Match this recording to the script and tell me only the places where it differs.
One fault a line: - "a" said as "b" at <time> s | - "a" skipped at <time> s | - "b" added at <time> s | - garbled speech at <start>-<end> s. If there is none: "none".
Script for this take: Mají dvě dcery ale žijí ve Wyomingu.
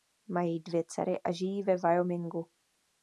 - "ale" said as "a" at 1.2 s